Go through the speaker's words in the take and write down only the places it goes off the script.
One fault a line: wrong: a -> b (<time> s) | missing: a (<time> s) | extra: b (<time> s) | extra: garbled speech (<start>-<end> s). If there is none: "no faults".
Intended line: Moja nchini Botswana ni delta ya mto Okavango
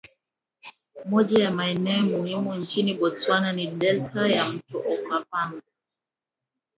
extra: ya maeneo muhimu (1.4 s)